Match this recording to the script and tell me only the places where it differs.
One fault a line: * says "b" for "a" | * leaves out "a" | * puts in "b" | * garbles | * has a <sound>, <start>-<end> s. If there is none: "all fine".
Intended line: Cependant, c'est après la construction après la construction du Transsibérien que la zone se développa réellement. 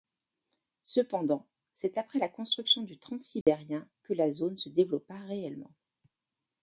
* leaves out "après la construction"
* has a dropout, 3.4-3.5 s